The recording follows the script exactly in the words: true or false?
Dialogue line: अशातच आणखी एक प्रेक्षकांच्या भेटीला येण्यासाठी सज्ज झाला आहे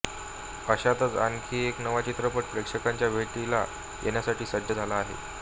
false